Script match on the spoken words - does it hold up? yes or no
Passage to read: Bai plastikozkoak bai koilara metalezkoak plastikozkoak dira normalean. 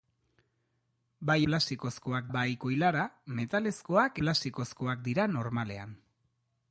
yes